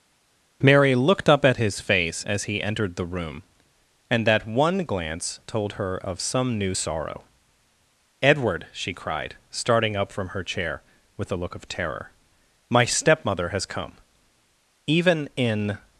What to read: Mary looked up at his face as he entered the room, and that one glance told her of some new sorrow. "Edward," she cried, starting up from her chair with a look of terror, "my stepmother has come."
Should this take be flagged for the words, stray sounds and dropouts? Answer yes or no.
yes